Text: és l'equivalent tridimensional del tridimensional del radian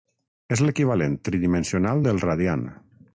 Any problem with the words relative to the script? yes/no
yes